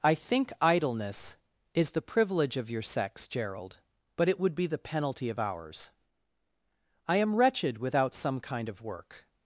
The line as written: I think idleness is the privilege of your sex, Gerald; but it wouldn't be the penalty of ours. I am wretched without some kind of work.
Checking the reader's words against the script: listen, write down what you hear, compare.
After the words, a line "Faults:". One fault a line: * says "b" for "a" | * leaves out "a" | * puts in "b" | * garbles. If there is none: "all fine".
I think idleness is the privilege of your sex, Gerald; but it would be the penalty of ours. I am wretched without some kind of work.
Faults:
* says "would" for "wouldn't"